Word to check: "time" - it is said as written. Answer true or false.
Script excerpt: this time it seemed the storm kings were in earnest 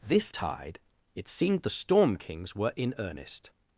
false